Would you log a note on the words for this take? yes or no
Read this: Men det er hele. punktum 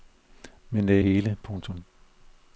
no